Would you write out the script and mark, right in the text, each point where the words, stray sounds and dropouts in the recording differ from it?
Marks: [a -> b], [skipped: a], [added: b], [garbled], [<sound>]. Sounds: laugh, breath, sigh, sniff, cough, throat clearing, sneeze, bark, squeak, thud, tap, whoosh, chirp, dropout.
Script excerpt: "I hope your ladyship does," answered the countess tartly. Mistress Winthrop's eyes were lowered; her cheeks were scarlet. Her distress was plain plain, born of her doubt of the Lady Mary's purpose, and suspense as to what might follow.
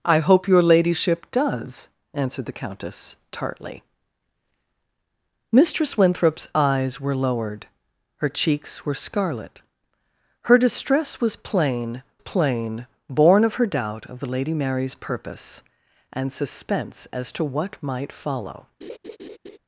"I hope your ladyship does," answered the countess tartly. Mistress Winthrop's eyes were lowered; her cheeks were scarlet. Her distress was plain plain, born of her doubt of the Lady Mary's purpose, and suspense as to what might follow. [laugh]